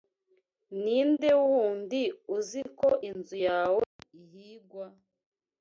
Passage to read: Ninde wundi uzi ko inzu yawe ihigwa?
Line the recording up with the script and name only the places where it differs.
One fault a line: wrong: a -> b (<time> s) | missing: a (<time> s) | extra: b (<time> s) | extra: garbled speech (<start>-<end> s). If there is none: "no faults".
no faults